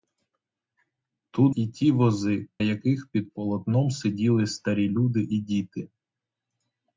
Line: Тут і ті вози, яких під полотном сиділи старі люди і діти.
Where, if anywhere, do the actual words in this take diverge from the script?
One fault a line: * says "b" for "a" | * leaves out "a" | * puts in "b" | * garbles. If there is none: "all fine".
all fine